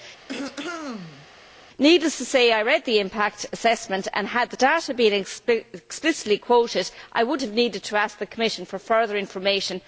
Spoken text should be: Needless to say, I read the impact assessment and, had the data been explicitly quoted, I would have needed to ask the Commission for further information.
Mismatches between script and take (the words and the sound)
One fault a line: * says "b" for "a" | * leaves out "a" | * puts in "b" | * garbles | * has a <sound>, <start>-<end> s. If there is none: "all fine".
* has a throat clearing, 0.3-1.3 s